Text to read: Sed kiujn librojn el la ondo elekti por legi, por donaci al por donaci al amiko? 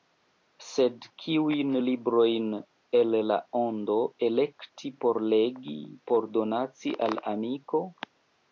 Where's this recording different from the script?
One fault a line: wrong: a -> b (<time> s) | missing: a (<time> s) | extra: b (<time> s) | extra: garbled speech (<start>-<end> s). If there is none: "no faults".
missing: por donaci al (7.2 s)